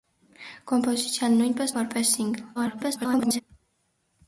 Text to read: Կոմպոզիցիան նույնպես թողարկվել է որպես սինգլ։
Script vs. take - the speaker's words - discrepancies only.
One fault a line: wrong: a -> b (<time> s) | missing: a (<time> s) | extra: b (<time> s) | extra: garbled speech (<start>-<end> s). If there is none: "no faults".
missing: թողարկվել (1.8 s)
extra: garbled speech (2.5-3.4 s)